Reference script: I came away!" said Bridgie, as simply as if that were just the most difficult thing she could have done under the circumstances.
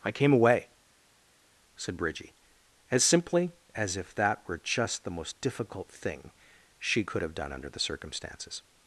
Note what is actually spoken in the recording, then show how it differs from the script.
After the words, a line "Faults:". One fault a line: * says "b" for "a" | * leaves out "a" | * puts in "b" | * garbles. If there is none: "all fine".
I came away!" said Bridgie, as simply as if that were just the most difficult thing she could have done under the circumstances.
Faults:
all fine